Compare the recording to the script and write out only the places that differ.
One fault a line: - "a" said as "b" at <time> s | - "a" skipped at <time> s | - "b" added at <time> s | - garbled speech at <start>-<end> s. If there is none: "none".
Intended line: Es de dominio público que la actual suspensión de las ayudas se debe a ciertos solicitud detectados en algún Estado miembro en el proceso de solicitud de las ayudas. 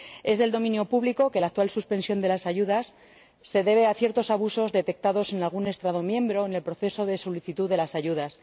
- "solicitud" said as "abusos" at 4.3 s